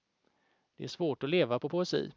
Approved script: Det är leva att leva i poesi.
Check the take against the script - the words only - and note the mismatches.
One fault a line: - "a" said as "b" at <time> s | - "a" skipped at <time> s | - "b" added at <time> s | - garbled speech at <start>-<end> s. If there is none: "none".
- "leva" said as "svårt" at 0.9 s
- "i" said as "på" at 1.6 s